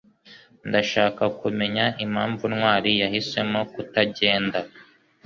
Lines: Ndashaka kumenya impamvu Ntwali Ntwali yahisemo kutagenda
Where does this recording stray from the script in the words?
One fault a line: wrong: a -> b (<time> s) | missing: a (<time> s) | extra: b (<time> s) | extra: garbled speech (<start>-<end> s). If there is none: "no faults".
missing: Ntwali (2.9 s)